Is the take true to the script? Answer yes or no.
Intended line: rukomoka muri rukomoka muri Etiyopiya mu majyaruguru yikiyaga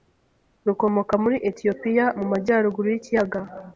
no